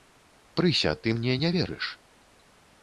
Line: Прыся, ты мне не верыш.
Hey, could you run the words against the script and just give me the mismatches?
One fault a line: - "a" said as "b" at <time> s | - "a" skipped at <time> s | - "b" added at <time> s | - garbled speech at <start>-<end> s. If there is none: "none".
none